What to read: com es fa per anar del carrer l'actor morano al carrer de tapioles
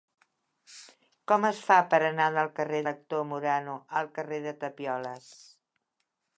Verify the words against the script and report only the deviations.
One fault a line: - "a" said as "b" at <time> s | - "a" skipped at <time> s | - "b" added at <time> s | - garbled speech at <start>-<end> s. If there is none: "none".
none